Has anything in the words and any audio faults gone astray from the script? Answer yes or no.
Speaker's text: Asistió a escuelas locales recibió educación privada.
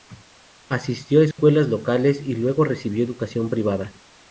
yes